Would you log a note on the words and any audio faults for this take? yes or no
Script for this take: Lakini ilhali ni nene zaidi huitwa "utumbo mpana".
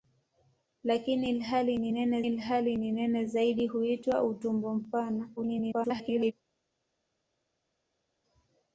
yes